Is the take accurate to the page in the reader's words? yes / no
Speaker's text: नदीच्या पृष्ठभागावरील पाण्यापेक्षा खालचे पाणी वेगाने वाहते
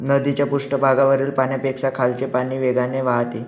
yes